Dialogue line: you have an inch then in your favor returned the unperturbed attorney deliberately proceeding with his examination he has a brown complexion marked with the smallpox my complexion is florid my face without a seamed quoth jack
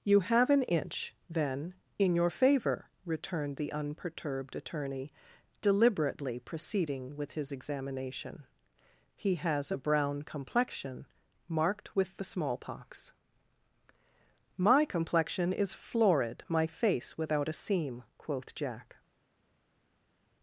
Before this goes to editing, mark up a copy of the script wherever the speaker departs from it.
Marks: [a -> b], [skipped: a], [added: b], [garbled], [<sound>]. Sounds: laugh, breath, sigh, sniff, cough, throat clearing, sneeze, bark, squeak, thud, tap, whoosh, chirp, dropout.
you have an inch then in your favor returned the unperturbed attorney deliberately proceeding with his examination he has a brown complexion marked with the smallpox my complexion is florid my face without a [seamed -> seam] quoth jack